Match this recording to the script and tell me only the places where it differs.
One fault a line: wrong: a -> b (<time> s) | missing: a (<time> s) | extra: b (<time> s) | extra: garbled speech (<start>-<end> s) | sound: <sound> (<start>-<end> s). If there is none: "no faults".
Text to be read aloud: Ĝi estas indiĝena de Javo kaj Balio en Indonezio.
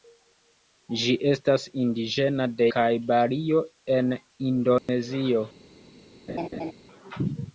missing: Javo (2.7 s)
sound: dropout (4.8-4.9 s)
sound: laugh (6.3-6.7 s)